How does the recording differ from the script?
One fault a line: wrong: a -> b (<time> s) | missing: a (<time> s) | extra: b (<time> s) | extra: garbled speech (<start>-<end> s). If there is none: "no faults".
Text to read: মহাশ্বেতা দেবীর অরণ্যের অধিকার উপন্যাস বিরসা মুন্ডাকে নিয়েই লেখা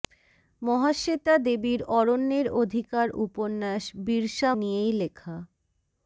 missing: মুন্ডাকে (4.5 s)